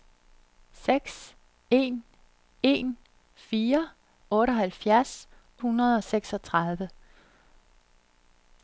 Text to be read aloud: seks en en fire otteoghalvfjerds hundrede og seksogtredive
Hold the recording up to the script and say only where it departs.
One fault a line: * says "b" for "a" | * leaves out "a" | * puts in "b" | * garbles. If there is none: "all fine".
all fine